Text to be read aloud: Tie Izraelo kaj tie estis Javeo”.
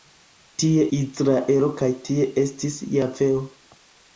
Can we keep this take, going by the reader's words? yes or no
yes